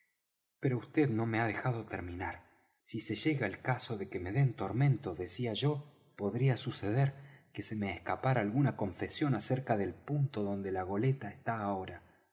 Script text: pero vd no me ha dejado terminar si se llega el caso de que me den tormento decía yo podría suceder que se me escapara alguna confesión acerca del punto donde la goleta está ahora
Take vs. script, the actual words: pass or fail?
pass